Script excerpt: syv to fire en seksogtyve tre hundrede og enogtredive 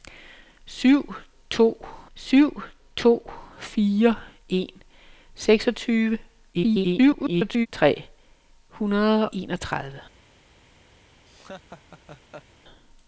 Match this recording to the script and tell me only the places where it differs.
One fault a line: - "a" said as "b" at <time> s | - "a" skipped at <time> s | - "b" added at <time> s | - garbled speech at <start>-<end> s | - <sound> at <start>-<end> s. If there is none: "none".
- "syv to" added at 2.1 s
- garbled speech at 6.5-7.7 s
- "og" skipped at 9.3 s
- laugh at 11.3-12.5 s